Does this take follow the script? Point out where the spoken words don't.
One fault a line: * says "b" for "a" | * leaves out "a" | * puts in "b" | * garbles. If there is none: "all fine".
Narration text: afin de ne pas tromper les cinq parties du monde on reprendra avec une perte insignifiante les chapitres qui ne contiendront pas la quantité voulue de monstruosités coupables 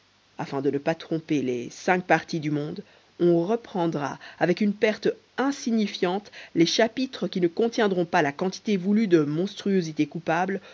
all fine